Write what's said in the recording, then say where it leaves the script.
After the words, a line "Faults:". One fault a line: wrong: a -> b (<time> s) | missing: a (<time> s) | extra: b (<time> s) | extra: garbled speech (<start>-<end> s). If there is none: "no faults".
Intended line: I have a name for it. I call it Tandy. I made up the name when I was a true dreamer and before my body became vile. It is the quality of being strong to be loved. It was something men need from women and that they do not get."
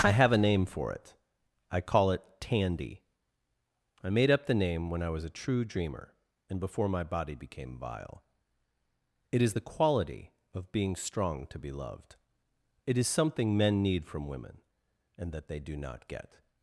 I have a name for it. I call it Tandy. I made up the name when I was a true dreamer and before my body became vile. It is the quality of being strong to be loved. It is something men need from women and that they do not get."
Faults:
wrong: was -> is (13.0 s)